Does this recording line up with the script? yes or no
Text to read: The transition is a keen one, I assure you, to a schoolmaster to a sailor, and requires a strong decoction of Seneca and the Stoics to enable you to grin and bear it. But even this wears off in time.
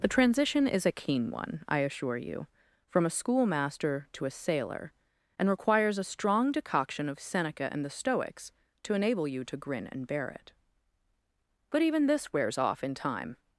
no